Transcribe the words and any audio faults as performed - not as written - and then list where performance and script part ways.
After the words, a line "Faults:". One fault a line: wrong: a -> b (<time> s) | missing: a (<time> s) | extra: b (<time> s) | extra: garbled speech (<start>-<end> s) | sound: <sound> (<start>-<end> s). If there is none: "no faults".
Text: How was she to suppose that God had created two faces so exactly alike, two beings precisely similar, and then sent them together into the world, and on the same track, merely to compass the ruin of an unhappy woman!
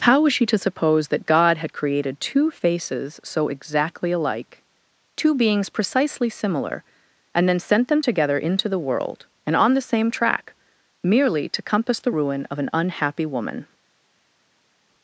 How was she to suppose that God had created two faces so exactly alike, two beings precisely similar, and then sent them together into the world, and on the same track, merely to compass the ruin of an unhappy woman!
Faults:
no faults